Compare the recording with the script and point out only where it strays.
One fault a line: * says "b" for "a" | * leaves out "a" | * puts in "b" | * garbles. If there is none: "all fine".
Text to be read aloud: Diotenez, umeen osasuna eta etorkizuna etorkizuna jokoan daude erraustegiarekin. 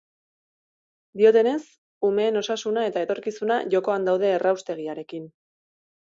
* leaves out "etorkizuna"